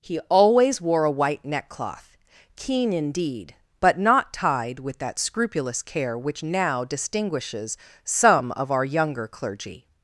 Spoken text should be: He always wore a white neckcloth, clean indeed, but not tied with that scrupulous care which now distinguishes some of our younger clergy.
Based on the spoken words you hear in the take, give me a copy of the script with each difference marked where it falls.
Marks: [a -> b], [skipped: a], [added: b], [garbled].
He always wore a white neckcloth, [clean -> keen] indeed, but not tied with that scrupulous care which now distinguishes some of our younger clergy.